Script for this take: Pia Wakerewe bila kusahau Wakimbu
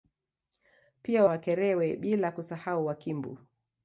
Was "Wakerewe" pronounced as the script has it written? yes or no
yes